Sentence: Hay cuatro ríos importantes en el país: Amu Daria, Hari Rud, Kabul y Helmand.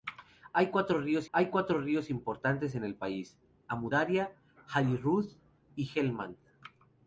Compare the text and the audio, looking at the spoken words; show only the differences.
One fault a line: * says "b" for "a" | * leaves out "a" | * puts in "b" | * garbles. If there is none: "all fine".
* puts in "hay cuatro ríos"
* leaves out "Kabul"